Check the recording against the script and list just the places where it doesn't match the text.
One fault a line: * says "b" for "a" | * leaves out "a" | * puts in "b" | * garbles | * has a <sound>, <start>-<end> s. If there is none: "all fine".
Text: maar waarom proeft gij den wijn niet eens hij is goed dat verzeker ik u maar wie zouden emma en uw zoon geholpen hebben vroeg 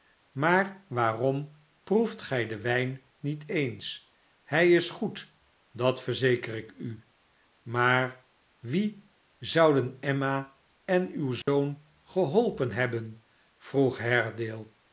* has a dropout, 11.4-11.5 s